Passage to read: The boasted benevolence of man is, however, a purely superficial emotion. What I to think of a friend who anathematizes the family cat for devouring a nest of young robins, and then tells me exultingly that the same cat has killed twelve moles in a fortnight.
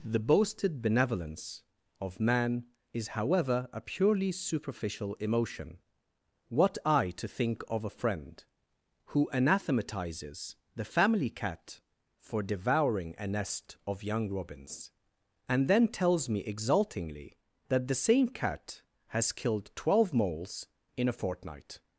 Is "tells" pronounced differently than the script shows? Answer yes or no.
no